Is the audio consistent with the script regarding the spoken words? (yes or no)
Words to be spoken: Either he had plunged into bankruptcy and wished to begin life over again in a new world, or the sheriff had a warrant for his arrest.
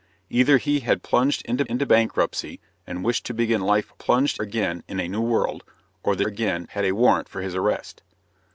no